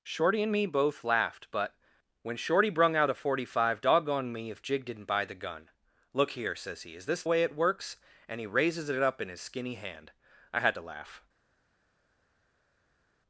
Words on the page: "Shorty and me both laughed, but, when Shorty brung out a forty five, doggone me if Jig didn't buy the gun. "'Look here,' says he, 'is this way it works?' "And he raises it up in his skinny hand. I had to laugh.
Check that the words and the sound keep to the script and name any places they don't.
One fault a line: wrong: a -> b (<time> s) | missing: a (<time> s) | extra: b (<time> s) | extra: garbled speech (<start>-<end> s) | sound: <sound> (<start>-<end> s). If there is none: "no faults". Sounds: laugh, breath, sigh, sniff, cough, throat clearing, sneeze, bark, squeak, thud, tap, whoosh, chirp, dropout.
no faults